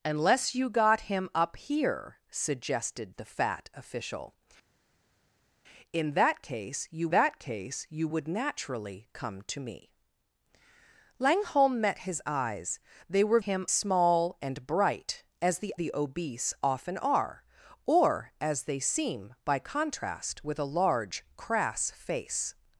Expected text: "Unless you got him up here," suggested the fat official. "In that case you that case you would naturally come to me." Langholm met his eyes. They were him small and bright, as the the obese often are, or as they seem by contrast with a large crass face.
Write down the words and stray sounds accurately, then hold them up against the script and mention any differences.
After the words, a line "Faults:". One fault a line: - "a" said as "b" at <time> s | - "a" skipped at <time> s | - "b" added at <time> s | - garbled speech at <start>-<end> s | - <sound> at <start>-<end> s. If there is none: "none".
"Unless you got him up here," suggested the fat official. "In that case you that case you would naturally come to me." Langholm met his eyes. They were him small and bright, as the the obese often are, or as they seem by contrast with a large crass face.
Faults:
none